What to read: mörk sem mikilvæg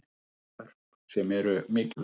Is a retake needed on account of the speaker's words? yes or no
yes